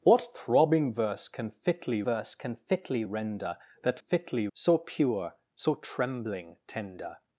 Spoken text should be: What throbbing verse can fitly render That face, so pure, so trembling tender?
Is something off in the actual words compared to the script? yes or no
yes